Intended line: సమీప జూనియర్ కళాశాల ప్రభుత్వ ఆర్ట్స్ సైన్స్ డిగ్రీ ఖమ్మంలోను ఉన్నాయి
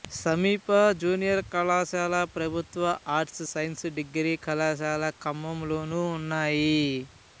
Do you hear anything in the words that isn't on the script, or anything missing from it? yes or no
yes